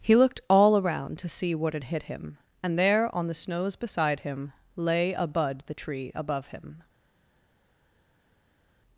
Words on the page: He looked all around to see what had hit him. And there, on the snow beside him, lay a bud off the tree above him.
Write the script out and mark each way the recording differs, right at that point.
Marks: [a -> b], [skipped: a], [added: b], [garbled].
He looked all around to see what had hit him. And there, on the [snow -> snows] beside him, lay a bud [skipped: off] the tree above him.